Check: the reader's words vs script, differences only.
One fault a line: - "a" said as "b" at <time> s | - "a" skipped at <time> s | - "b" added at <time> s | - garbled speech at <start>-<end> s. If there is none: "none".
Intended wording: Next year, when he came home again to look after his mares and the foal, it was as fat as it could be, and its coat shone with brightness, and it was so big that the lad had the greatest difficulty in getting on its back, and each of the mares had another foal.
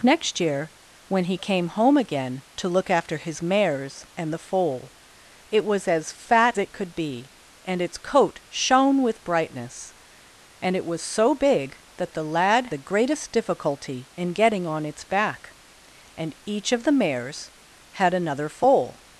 - "as" skipped at 6.6 s
- "had" skipped at 12.7 s